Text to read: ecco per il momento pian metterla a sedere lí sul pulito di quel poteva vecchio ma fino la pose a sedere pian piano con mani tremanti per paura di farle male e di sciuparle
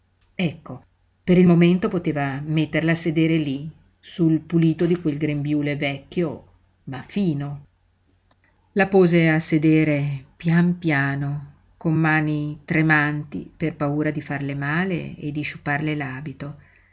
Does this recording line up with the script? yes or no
no